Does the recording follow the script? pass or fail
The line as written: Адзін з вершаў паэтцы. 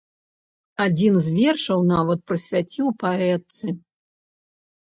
fail